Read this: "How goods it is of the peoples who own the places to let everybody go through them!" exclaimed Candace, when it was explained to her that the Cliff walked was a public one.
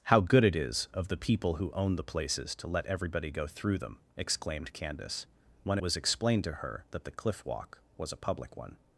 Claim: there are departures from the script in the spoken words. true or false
true